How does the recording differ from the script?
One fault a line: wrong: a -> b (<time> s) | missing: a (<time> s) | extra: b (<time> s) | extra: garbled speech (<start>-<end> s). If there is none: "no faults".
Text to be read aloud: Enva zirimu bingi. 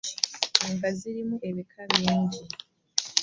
extra: ebika (1.5 s)